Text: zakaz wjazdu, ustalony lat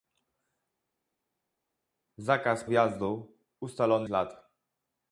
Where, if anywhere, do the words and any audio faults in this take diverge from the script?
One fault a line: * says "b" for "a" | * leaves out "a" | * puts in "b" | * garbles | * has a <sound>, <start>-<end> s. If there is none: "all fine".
all fine